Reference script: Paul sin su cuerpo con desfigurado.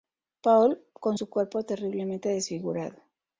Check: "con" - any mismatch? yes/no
yes